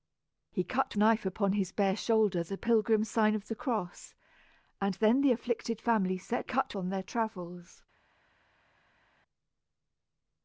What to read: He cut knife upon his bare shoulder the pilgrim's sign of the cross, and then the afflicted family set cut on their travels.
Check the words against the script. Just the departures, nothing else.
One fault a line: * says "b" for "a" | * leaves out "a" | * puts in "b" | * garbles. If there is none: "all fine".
all fine